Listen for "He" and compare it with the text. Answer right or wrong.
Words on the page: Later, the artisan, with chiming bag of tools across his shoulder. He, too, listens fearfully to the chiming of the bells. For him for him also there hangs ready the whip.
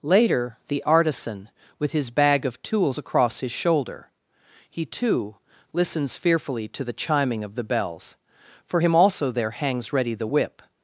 right